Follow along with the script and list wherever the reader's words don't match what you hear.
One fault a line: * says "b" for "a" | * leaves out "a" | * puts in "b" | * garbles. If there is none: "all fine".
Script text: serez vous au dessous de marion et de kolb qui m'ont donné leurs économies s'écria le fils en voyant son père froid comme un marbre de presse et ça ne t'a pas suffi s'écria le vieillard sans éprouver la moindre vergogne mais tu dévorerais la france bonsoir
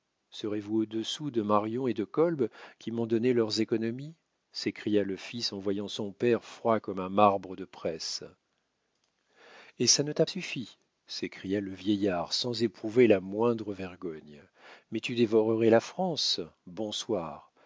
* leaves out "pas"